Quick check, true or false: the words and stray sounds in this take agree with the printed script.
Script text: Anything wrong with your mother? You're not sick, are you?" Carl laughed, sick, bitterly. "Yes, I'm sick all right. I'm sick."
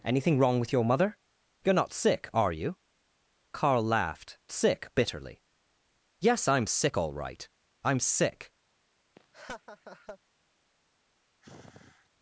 false